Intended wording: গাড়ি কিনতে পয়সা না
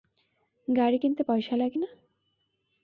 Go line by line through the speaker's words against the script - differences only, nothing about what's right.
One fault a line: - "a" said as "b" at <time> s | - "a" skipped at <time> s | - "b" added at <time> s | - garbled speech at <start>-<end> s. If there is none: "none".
- "লাগে" added at 1.6 s